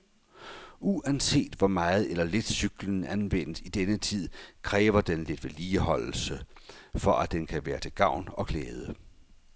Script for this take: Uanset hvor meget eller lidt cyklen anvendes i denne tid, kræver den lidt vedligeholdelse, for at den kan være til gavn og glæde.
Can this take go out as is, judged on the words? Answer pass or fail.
pass